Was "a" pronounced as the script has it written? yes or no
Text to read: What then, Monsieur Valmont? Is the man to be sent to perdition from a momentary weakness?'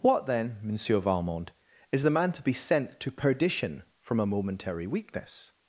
yes